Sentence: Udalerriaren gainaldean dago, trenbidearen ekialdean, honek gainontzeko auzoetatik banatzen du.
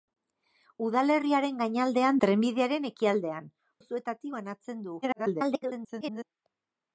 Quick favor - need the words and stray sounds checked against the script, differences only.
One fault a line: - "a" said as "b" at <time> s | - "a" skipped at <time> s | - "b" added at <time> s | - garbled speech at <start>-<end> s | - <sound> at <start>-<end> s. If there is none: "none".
- "dago" skipped at 2.2 s
- "honek gainontzeko" skipped at 3.5 s
- garbled speech at 5.0-6.2 s